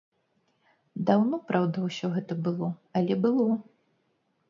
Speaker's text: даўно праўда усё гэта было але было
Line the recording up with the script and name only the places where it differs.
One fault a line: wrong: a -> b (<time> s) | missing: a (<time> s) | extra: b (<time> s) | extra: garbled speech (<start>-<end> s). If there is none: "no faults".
no faults